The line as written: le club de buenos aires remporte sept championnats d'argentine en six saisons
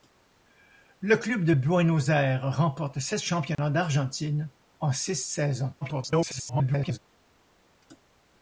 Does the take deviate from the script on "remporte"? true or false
false